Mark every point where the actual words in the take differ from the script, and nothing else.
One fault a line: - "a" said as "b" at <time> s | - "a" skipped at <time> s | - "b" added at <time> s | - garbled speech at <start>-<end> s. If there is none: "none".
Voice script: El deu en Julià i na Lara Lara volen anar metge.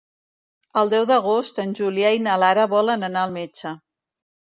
- "d'agost" added at 1.1 s
- "Lara" skipped at 2.6 s
- "al" added at 3.3 s